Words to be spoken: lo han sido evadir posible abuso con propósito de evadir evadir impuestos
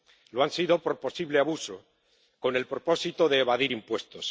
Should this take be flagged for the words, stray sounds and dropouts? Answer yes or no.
yes